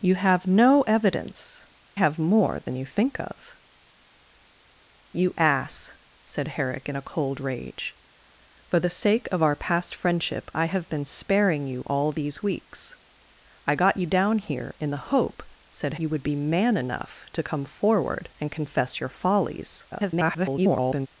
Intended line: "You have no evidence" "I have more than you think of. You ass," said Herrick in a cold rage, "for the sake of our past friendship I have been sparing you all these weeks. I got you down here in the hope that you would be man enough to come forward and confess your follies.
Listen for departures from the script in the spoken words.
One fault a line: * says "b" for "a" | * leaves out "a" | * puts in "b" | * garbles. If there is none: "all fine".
* leaves out "I"
* says "said" for "that"
* garbles